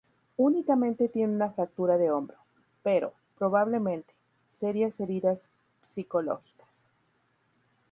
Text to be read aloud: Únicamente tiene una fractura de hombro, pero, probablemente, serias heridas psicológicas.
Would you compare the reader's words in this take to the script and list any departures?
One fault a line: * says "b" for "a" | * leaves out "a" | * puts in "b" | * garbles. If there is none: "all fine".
all fine